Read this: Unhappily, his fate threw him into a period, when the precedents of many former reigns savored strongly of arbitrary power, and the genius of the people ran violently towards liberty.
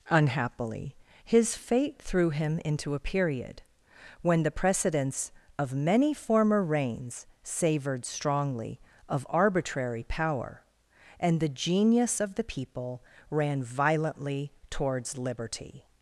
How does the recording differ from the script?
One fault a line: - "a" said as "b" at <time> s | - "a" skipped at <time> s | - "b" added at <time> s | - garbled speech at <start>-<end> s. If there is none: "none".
none